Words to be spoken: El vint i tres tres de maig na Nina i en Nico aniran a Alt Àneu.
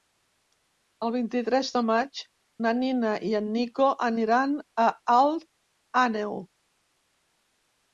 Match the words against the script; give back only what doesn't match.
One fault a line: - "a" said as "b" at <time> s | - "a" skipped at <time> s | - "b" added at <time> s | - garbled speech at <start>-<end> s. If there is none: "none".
- "tres" skipped at 1.7 s